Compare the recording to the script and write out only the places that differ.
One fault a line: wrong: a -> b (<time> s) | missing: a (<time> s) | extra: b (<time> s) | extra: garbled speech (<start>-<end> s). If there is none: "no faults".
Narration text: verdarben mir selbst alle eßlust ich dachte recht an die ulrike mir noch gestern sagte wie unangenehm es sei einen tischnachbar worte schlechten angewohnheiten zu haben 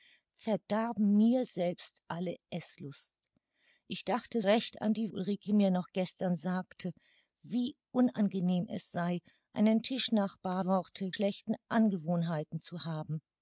no faults